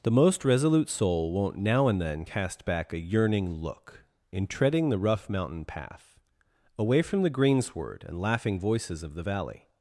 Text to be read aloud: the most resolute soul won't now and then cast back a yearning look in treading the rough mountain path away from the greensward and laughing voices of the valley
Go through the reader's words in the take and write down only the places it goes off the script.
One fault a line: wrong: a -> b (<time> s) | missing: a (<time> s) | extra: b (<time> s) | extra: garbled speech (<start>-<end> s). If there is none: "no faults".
no faults